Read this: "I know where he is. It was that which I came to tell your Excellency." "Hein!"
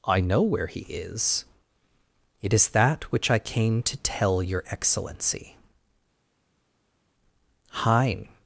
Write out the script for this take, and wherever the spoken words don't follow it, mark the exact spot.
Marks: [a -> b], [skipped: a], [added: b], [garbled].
"I know where he is. It [was -> is] that which I came to tell your Excellency." "Hein!"